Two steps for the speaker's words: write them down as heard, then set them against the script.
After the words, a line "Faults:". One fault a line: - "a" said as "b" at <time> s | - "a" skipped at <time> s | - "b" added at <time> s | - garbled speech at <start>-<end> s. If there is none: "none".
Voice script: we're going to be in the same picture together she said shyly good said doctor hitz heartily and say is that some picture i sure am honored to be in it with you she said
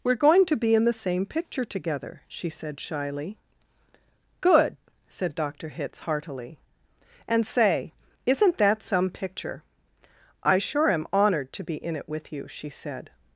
we're going to be in the same picture together she said shyly good said doctor hitz heartily and say isn't that some picture i sure am honored to be in it with you she said
Faults:
- "is" said as "isn't" at 8.2 s